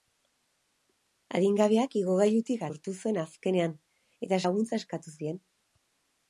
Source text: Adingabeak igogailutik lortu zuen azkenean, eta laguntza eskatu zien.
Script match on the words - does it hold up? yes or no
yes